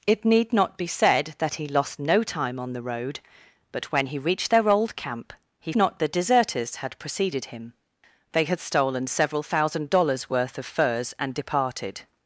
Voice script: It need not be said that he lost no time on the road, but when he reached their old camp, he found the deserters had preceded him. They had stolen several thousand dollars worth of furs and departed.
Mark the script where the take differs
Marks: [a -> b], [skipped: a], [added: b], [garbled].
It need not be said that he lost no time on the road, but when he reached their old camp, he [found -> not] the deserters had preceded him. They had stolen several thousand dollars worth of furs and departed.